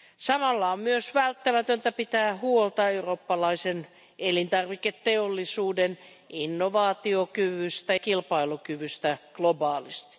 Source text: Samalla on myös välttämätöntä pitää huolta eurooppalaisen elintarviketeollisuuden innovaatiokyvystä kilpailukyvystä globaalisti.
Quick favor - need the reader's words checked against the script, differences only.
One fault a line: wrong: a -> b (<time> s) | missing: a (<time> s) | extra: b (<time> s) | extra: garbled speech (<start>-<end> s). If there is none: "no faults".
no faults